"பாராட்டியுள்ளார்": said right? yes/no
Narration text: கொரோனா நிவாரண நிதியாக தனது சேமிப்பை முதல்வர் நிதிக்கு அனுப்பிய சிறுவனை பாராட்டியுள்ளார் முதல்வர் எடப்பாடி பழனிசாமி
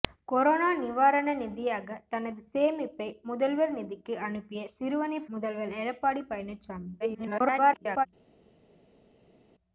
no